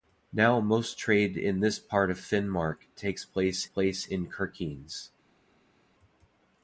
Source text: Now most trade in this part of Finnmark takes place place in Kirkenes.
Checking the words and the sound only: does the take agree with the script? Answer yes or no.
yes